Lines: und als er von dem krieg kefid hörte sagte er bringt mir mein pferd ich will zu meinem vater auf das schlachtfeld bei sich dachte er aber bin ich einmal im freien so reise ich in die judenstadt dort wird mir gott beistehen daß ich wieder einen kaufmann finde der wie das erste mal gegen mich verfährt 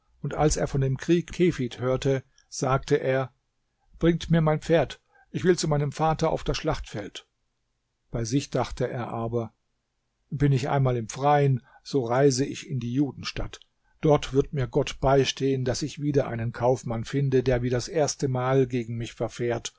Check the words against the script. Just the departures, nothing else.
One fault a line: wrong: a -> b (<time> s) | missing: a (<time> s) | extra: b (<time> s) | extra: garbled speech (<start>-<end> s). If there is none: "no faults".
no faults